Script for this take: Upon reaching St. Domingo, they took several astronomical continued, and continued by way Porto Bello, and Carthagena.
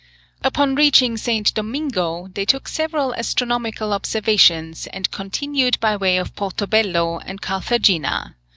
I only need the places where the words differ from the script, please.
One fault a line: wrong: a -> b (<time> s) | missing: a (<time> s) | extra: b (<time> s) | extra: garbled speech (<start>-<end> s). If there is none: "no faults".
wrong: continued -> observations (3.9 s)
extra: of (6.2 s)